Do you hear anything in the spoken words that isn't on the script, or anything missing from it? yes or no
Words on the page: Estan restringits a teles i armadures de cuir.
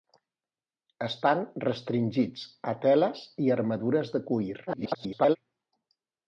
yes